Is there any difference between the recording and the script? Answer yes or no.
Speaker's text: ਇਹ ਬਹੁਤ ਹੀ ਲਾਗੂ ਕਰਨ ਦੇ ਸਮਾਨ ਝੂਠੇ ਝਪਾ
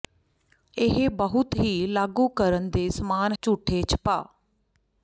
no